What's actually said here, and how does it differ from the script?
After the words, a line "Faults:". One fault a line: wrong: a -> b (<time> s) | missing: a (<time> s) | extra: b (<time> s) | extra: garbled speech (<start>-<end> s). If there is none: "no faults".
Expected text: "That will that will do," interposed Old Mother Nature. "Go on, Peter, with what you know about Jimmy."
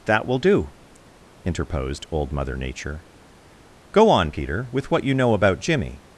"That will do," interposed Old Mother Nature. "Go on, Peter, with what you know about Jimmy."
Faults:
missing: that will (0.4 s)